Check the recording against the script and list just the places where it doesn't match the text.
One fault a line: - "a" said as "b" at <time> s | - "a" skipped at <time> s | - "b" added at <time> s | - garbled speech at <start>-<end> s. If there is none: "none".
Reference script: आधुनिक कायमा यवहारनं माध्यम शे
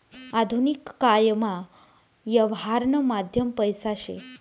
- "पैसा" added at 3.5 s